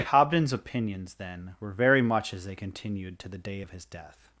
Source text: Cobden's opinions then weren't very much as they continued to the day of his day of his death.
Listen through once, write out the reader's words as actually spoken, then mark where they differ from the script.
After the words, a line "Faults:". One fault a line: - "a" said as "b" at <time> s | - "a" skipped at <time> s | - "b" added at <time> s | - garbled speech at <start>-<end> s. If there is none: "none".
Cobden's opinions then were very much as they continued to the day of his death.
Faults:
- "weren't" said as "were" at 1.6 s
- "day of his" skipped at 3.8 s